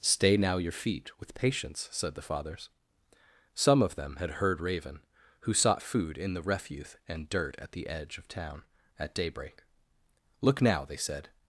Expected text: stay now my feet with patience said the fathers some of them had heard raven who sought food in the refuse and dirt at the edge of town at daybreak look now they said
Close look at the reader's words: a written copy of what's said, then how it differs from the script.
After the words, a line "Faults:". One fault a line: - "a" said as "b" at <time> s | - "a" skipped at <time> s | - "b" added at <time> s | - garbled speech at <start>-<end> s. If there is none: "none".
stay now your feet with patience said the fathers some of them had heard raven who sought food in the refuse and dirt at the edge of town at daybreak look now they said
Faults:
- "my" said as "your" at 0.6 s